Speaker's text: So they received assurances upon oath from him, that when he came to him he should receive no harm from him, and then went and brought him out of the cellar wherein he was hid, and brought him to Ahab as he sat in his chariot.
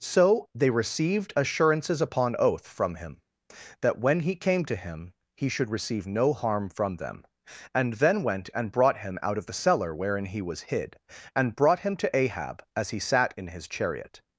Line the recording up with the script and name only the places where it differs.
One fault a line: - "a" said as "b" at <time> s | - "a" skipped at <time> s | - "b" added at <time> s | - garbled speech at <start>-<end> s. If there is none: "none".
- "him" said as "them" at 7.0 s